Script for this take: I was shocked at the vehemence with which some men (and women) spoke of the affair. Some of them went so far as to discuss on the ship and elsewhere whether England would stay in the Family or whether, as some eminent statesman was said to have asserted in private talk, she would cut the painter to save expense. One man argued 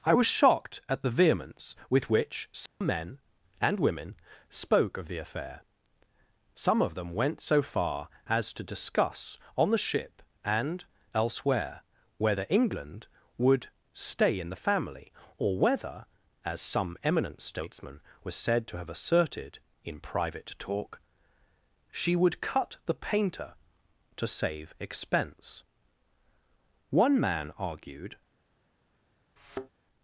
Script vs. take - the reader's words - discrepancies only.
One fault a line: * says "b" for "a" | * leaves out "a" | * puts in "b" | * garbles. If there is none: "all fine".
all fine